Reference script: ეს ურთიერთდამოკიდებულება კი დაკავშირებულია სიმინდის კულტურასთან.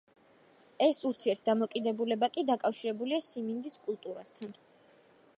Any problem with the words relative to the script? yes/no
no